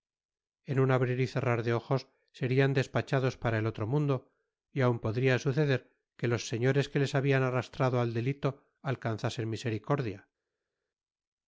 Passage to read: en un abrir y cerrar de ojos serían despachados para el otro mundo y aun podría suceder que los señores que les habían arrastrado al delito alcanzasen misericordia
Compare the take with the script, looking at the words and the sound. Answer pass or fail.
pass